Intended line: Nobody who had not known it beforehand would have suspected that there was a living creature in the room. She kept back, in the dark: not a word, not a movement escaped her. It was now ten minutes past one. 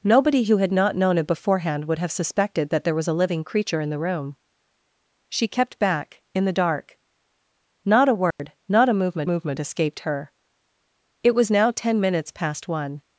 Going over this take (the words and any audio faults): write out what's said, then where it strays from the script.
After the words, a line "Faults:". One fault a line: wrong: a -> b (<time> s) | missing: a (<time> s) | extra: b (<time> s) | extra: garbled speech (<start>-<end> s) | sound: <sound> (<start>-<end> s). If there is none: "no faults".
Nobody who had not known it beforehand would have suspected that there was a living creature in the room. She kept back, in the dark: not a word, not a movement movement escaped her. It was now ten minutes past one.
Faults:
sound: dropout (8.3-8.4 s)
extra: movement (9.2 s)